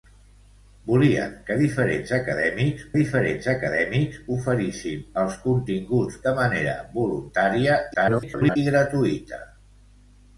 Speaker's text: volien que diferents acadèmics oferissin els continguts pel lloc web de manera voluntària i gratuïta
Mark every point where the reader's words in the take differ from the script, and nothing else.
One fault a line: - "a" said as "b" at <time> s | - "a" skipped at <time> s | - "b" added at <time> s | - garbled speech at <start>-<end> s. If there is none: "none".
- "diferents acadèmics" added at 3.0 s
- "pel lloc web" skipped at 6.2 s
- garbled speech at 7.9-8.6 s